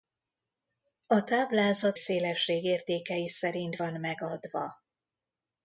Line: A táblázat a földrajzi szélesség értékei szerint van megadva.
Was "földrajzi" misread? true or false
true